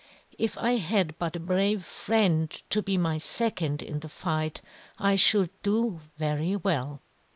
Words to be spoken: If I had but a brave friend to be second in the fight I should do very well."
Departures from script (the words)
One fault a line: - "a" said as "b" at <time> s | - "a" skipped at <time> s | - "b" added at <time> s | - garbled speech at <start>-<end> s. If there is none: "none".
- "my" added at 3.0 s